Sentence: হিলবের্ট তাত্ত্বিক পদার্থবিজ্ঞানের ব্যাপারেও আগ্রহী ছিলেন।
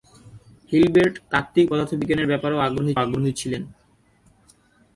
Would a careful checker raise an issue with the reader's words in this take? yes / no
yes